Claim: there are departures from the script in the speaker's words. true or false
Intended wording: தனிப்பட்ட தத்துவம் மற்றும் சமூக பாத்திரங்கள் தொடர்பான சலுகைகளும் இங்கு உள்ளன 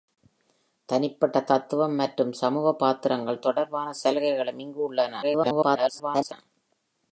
true